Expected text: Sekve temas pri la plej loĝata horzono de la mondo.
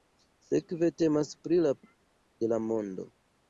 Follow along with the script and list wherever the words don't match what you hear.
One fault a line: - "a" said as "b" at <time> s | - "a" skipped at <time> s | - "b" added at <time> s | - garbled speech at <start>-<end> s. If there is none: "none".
- "plej loĝata horzono" skipped at 1.7 s